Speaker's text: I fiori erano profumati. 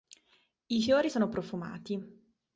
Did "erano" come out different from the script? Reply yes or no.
yes